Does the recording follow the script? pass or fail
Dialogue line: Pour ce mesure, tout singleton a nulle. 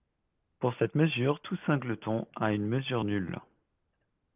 fail